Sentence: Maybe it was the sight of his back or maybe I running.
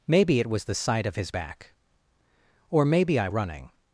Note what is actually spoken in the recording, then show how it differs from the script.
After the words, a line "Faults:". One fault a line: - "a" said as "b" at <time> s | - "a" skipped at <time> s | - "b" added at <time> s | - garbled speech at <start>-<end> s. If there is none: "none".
Maybe it was the sight of his back or maybe I running.
Faults:
none